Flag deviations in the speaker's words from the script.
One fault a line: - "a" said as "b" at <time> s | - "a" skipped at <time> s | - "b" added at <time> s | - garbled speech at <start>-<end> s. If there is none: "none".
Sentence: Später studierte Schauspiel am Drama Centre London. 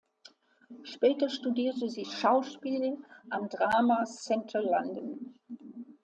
- "sie" added at 1.9 s